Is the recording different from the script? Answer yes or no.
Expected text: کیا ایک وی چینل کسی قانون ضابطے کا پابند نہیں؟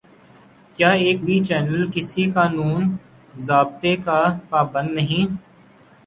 no